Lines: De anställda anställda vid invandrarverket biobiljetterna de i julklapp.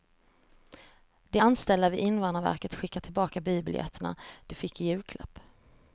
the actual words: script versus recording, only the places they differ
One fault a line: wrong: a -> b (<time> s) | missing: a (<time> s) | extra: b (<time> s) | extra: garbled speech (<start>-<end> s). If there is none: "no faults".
missing: anställda (1.9 s)
extra: skickar tillbaka (2.8 s)
extra: fick (4.5 s)